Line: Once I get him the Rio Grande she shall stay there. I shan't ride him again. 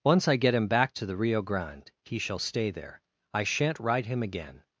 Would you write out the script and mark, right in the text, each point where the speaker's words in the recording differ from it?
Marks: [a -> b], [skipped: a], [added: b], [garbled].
Once I get him [added: back to] the Rio Grande [she -> he] shall stay there. I shan't ride him again.